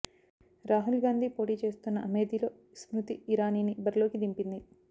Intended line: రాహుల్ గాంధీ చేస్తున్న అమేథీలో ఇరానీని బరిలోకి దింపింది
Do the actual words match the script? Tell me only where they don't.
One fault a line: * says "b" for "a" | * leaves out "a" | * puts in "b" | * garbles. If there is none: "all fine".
* puts in "పోటీ"
* puts in "స్మృతి"